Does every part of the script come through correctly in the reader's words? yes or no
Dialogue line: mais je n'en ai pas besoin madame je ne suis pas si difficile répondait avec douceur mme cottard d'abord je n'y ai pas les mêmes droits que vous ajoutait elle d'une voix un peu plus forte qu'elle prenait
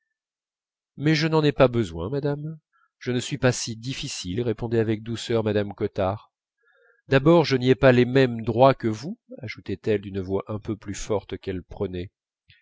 yes